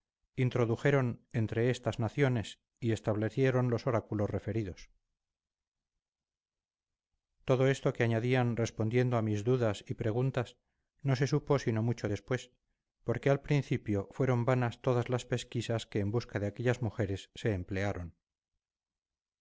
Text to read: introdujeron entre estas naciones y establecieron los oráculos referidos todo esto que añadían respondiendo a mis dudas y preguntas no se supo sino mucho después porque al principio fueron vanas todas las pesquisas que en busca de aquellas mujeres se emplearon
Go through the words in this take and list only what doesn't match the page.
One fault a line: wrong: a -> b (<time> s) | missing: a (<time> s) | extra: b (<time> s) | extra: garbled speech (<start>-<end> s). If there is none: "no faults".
no faults